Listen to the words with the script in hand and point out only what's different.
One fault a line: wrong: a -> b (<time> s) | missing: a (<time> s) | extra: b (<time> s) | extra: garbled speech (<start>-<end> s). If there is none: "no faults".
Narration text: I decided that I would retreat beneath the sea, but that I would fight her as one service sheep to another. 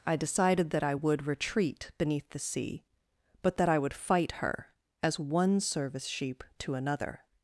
no faults